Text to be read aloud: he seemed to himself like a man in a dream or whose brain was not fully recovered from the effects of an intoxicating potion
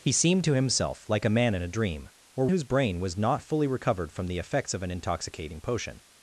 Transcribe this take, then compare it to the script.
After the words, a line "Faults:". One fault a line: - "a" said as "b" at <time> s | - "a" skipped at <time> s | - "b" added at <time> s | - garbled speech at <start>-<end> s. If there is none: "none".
he seemed to himself like a man in a dream or whose brain was not fully recovered from the effects of an intoxicating potion
Faults:
none